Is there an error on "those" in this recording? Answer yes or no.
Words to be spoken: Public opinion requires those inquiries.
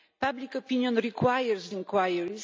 yes